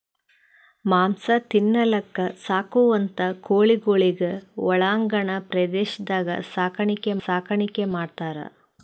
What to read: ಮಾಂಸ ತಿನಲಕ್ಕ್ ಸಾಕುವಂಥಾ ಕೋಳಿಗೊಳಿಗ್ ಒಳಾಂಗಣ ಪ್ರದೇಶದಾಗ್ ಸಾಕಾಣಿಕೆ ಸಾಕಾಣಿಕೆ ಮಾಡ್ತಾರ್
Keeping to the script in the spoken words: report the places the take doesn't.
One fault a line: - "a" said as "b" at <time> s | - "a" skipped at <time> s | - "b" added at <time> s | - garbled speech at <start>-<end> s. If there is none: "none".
none